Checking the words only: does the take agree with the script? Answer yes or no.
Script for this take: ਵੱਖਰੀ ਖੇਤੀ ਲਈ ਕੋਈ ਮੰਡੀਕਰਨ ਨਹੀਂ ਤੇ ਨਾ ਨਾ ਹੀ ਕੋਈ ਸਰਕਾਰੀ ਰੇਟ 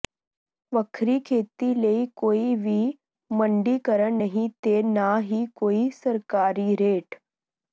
no